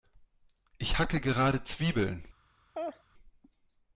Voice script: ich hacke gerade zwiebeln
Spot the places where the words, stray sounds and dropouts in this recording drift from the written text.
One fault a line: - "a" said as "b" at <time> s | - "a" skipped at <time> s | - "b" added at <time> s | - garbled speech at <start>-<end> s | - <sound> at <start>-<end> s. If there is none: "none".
- laugh at 2.7-3.0 s